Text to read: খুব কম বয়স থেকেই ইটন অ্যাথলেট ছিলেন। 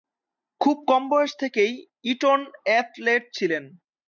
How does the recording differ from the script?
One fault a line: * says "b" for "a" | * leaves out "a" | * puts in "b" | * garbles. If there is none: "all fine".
all fine